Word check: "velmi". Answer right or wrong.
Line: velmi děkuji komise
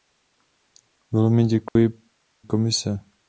right